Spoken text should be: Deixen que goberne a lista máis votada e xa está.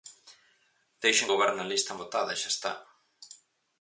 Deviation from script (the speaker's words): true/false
true